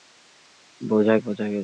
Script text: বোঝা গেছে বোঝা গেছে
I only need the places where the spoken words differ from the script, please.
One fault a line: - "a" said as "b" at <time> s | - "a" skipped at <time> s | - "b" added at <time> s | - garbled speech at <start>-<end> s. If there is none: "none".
- "গেছে" skipped at 1.1 s